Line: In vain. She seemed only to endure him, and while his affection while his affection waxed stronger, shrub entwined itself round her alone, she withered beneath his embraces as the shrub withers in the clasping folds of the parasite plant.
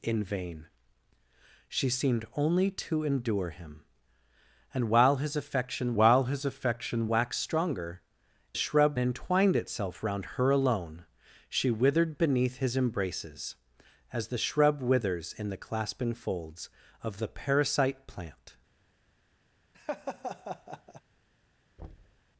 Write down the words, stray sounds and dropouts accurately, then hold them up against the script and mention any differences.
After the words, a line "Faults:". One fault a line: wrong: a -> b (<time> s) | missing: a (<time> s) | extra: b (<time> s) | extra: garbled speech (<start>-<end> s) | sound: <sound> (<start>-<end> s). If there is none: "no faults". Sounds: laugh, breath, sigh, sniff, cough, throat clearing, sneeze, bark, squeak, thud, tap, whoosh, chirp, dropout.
In vain. She seemed only to endure him, and while his affection while his affection waxed stronger, shrub entwined itself round her alone, she withered beneath his embraces as the shrub withers in the clasping folds of the parasite plant.
Faults:
sound: laugh (19.7-21.0 s)
sound: thud (21.8-22.2 s)